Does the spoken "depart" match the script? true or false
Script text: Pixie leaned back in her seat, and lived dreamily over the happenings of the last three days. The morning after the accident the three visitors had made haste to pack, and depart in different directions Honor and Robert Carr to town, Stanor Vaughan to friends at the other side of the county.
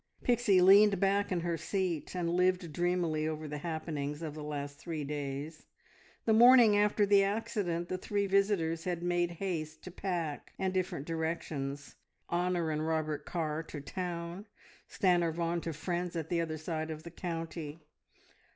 false